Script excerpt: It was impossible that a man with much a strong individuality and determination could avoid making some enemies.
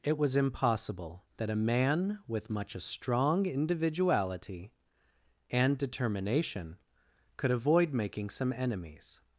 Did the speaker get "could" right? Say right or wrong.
right